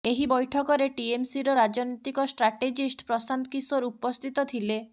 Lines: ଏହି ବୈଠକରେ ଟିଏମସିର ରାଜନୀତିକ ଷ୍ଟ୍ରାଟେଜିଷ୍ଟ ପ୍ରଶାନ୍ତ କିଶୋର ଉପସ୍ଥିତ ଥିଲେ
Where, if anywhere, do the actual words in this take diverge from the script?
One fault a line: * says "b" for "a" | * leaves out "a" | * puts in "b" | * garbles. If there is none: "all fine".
all fine